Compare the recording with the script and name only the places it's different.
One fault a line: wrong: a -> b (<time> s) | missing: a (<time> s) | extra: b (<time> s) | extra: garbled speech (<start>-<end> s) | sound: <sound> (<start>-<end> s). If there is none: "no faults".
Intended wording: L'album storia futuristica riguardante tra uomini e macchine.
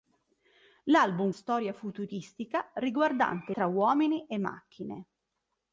no faults